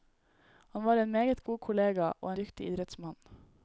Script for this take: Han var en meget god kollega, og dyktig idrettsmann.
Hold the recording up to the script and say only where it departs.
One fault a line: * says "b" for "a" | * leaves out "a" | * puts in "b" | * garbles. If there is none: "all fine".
all fine